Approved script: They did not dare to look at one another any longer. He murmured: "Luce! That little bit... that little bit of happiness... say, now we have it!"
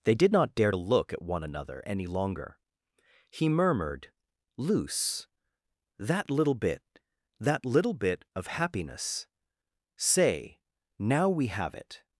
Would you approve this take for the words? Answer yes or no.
yes